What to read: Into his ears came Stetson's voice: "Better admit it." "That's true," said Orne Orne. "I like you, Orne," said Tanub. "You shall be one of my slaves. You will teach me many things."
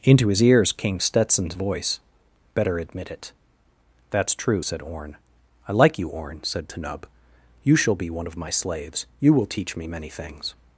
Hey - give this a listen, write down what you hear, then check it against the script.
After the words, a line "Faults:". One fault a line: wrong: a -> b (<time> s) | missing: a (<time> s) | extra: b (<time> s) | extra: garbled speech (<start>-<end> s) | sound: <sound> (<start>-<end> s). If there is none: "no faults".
Into his ears came Stetson's voice: "Better admit it." "That's true," said Orne. "I like you, Orne," said Tanub. "You shall be one of my slaves. You will teach me many things."
Faults:
missing: Orne (5.2 s)